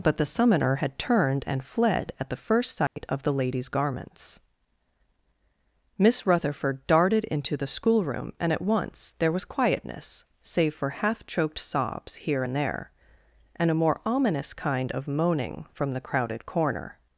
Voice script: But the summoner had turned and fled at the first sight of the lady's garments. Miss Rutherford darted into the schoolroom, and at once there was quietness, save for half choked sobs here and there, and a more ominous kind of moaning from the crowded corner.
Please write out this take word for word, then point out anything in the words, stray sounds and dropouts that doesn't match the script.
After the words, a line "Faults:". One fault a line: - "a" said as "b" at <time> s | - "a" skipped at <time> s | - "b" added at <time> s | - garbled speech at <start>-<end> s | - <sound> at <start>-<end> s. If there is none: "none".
But the summoner had turned and fled at the first sight of the lady's garments. Miss Rutherford darted into the schoolroom, and at once there was quietness, save for half choked sobs here and there, and a more ominous kind of moaning from the crowded corner.
Faults:
- dropout at 2.9-3.0 s